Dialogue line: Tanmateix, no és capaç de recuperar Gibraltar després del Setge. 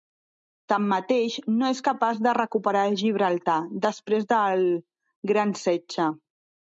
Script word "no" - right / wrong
right